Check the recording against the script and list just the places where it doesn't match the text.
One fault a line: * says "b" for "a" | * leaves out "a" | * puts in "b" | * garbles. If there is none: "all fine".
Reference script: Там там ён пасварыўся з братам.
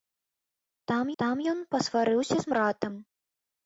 all fine